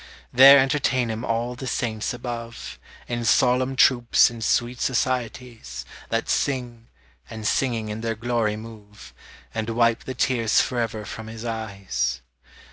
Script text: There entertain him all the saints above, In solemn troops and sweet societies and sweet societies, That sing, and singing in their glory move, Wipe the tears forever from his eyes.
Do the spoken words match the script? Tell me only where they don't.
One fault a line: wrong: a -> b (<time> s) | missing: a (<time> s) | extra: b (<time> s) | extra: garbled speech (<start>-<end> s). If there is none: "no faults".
missing: and sweet societies (5.8 s)
extra: And (9.5 s)